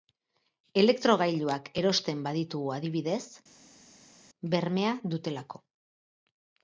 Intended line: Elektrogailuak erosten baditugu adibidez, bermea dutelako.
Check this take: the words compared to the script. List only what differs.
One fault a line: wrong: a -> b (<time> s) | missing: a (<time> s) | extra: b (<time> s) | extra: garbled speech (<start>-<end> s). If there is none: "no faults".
no faults